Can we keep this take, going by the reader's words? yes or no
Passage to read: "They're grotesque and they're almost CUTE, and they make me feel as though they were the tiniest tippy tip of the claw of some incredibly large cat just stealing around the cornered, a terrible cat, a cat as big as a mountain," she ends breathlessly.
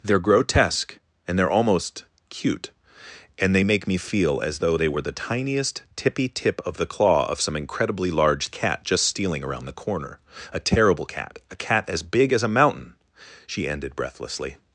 no